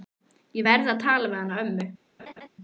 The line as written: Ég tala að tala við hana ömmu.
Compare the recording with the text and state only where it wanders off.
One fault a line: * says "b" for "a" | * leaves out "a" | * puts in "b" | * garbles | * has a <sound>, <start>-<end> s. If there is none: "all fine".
* says "verð" for "tala"
* has a laugh, 2.2-2.5 s